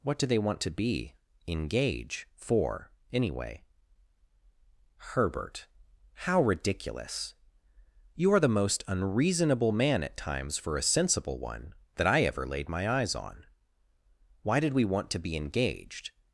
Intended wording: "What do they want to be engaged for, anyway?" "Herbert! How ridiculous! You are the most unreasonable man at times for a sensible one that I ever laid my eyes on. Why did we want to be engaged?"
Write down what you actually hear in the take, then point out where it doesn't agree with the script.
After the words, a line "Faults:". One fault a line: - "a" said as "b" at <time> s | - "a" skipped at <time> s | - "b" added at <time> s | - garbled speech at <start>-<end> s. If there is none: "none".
"What do they want to be engage for, anyway?" "Herbert! How ridiculous! You are the most unreasonable man at times for a sensible one that I ever laid my eyes on. Why did we want to be engaged?"
Faults:
- "engaged" said as "engage" at 1.5 s